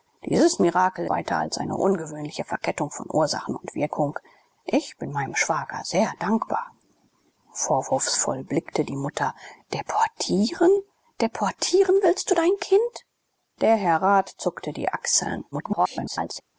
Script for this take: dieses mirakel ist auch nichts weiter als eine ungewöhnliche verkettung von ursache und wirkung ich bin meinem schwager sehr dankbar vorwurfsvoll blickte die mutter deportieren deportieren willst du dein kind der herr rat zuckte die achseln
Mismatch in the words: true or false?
true